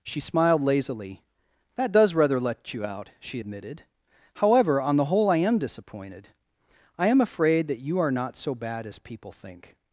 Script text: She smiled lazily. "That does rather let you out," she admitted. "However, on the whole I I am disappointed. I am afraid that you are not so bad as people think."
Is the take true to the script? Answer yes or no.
no